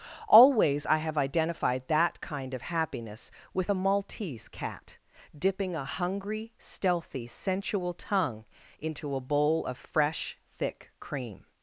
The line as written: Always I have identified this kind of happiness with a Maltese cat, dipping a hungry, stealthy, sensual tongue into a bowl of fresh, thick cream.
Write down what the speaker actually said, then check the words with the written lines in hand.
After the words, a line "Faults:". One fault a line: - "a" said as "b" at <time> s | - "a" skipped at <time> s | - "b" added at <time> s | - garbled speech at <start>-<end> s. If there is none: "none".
Always I have identified that kind of happiness with a Maltese cat, dipping a hungry, stealthy, sensual tongue into a bowl of fresh, thick cream.
Faults:
- "this" said as "that" at 1.9 s